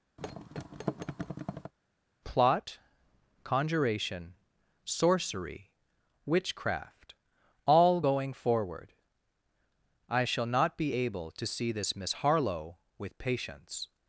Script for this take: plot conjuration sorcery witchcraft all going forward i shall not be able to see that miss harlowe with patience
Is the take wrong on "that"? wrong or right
wrong